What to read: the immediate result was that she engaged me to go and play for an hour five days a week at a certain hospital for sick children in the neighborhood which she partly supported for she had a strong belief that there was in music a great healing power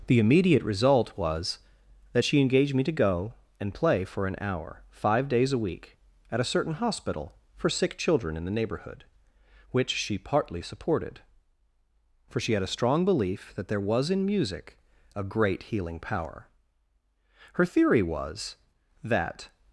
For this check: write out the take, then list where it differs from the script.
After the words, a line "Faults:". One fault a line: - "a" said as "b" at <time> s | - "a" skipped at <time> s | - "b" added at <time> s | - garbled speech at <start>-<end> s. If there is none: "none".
the immediate result was that she engaged me to go and play for an hour five days a week at a certain hospital for sick children in the neighborhood which she partly supported for she had a strong belief that there was in music a great healing power her theory was that
Faults:
- "her theory was that" added at 17.5 s